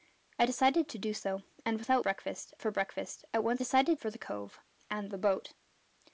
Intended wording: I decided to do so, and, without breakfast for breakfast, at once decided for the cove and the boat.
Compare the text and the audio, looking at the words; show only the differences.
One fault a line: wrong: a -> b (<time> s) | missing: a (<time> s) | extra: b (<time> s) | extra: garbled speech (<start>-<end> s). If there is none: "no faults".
no faults